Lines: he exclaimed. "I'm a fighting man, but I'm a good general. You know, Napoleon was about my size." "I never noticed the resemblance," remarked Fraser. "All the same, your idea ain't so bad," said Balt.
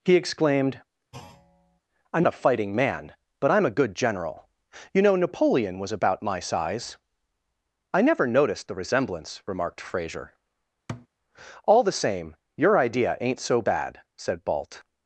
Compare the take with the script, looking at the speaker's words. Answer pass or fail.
pass